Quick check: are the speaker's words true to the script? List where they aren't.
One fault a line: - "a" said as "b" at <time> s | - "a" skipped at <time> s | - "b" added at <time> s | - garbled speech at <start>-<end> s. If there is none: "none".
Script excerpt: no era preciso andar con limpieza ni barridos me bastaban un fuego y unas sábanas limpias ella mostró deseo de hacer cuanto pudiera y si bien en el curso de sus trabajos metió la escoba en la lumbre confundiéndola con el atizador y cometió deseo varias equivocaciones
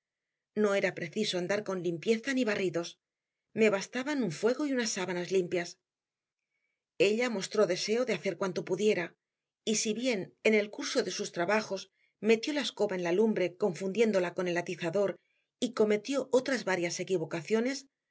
- "deseo" said as "otras" at 16.3 s